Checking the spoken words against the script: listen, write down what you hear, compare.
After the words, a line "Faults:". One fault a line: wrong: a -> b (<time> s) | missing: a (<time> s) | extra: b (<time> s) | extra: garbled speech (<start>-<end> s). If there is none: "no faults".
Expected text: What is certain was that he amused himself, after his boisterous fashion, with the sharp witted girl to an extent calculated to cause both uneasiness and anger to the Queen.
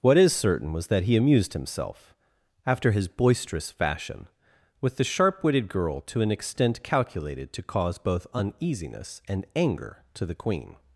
What is certain was that he amused himself, after his boisterous fashion, with the sharp witted girl to an extent calculated to cause both uneasiness and anger to the Queen.
Faults:
no faults